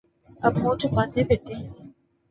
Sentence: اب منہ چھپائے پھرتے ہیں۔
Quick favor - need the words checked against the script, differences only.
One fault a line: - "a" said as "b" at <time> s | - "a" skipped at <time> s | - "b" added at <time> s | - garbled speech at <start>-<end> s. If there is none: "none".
none